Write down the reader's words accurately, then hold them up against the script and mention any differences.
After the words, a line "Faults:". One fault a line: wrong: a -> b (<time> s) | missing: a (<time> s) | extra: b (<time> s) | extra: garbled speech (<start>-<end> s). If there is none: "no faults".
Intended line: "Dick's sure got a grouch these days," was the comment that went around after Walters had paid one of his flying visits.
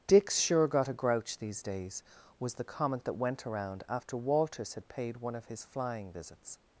"Dick's sure got a grouch these days," was the comment that went around after Walters had paid one of his flying visits.
Faults:
no faults